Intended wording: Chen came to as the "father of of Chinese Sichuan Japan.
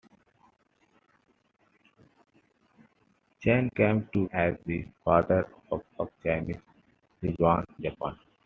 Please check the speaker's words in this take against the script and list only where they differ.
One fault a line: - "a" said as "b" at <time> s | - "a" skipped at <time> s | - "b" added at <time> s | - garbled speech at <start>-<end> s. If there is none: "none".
none